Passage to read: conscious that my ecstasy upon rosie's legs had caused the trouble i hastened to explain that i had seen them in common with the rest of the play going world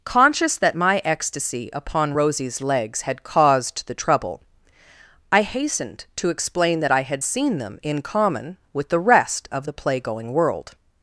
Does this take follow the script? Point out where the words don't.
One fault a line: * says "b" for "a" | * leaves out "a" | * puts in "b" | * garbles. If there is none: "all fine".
all fine